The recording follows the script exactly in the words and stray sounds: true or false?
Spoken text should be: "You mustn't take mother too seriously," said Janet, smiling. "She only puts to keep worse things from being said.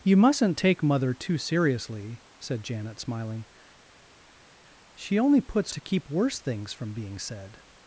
true